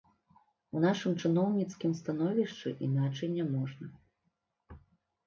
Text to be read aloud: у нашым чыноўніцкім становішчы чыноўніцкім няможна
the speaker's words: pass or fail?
fail